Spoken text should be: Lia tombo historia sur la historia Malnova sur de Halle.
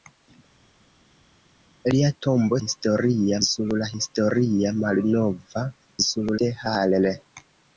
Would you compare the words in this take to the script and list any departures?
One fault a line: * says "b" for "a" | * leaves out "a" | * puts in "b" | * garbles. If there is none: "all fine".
all fine